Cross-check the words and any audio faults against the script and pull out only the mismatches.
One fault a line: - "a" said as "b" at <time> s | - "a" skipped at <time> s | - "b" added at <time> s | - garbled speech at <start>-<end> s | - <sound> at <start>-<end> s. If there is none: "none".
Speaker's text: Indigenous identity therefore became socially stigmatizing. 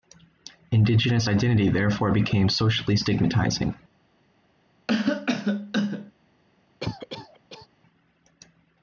- cough at 4.9-6.1 s
- cough at 6.8-7.7 s